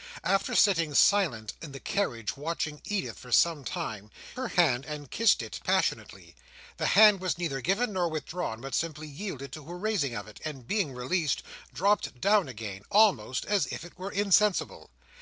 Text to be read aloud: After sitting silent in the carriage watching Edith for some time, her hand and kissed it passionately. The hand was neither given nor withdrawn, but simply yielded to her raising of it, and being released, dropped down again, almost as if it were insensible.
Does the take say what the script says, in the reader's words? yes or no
yes